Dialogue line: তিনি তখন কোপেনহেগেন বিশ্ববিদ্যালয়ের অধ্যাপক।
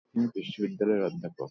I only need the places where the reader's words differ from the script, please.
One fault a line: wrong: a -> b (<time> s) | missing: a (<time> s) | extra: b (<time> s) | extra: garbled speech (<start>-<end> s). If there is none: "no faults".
missing: তখন কোপেনহেগেন (0.2 s)